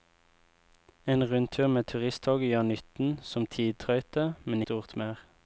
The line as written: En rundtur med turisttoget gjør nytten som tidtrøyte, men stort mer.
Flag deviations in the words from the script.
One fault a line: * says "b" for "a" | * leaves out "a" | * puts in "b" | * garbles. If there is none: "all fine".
all fine